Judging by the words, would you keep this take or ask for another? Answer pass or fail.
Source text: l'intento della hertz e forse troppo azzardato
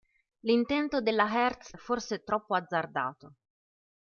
pass